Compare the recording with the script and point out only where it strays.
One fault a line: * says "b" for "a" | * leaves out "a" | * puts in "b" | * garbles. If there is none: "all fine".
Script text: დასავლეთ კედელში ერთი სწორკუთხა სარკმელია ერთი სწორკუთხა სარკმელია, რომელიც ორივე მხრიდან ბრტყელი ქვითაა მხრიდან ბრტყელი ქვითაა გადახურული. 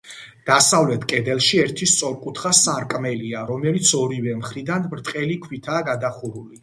* leaves out "ერთი სწორკუთხა სარკმელია"
* leaves out "მხრიდან ბრტყელი ქვითაა"